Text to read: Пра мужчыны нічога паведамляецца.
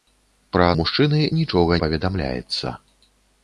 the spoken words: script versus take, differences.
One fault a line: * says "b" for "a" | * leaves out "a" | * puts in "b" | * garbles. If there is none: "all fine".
all fine